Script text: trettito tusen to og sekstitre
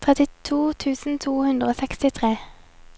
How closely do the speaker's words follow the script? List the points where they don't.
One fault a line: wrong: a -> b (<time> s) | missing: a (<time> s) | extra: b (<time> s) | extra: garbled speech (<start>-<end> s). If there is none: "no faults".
extra: hundre (1.4 s)